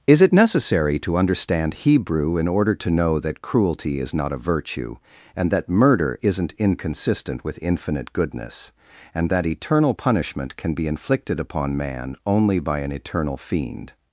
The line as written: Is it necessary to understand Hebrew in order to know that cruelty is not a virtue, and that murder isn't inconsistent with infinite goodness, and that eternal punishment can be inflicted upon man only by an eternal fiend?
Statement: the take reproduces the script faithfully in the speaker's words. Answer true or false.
true